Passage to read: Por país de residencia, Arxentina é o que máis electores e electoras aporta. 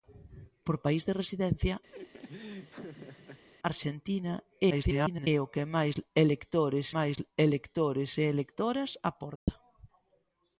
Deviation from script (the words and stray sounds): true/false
true